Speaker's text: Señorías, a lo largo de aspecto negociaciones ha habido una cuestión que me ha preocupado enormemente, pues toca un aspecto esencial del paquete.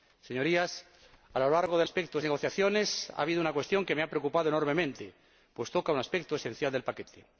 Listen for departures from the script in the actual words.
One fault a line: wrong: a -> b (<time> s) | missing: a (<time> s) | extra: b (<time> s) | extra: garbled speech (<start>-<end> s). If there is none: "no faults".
no faults